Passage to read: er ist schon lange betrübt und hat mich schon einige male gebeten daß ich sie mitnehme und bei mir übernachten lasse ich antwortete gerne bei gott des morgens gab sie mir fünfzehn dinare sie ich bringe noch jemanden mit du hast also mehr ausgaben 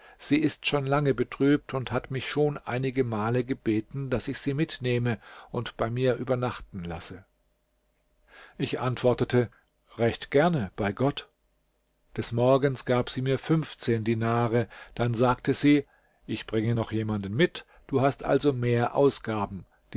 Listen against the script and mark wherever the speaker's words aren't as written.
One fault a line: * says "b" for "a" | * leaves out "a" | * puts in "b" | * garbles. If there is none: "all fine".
* says "sie" for "er"
* puts in "recht"
* puts in "dann sagte"